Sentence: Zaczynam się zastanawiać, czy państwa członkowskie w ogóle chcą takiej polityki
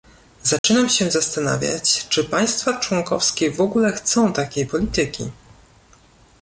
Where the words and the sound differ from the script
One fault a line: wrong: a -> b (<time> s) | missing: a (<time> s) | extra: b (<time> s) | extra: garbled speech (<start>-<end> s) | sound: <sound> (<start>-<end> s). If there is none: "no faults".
sound: dropout (0.6-0.6 s)